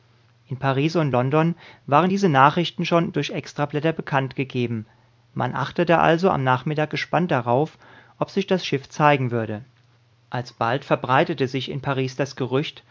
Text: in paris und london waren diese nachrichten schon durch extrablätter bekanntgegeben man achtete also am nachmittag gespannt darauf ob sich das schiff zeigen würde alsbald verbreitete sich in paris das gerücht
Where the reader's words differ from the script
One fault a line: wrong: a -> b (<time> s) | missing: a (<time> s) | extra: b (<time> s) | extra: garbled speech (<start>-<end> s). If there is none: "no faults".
no faults